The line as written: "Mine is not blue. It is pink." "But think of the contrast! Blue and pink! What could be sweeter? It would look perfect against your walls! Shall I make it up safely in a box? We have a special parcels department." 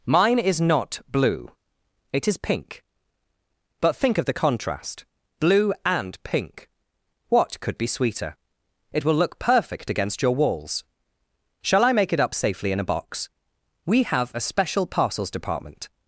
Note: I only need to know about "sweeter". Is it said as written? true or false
true